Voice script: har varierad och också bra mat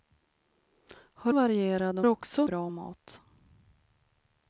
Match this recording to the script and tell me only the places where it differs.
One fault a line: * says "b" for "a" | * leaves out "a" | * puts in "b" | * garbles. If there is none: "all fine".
all fine